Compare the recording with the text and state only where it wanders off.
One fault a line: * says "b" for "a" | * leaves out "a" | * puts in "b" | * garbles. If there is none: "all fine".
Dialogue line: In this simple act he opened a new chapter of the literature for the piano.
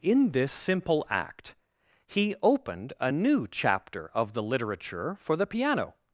all fine